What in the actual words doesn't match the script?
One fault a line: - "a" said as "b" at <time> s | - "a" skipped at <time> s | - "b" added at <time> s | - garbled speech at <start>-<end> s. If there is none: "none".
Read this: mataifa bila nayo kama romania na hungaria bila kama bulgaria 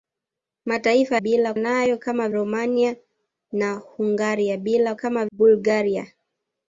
none